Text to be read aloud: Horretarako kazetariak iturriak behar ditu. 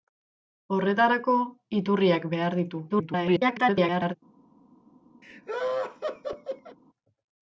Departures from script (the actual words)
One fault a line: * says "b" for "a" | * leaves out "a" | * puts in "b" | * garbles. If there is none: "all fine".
* leaves out "kazetariak"
* garbles